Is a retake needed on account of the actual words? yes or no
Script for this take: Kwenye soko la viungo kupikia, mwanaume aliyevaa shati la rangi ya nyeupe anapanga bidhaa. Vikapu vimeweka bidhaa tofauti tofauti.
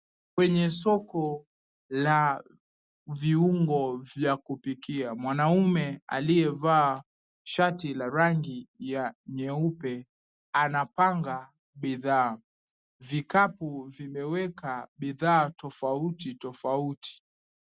yes